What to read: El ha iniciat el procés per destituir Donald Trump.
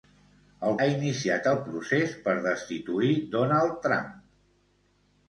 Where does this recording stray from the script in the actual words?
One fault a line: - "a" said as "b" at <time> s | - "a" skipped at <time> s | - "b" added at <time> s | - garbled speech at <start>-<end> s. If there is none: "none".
none